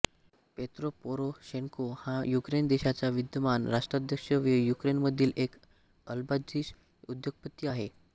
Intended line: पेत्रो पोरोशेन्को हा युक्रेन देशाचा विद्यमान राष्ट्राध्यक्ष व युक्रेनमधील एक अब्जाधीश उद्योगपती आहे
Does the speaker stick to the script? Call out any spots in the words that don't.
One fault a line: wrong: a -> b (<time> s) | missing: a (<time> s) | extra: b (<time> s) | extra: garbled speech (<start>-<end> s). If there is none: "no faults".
no faults